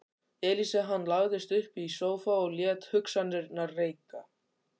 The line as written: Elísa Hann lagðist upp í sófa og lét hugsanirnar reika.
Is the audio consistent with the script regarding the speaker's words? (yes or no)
yes